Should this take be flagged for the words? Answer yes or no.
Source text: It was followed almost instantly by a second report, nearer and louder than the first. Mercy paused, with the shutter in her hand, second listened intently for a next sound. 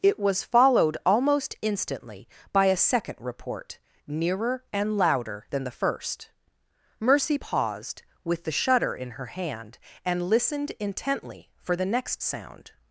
yes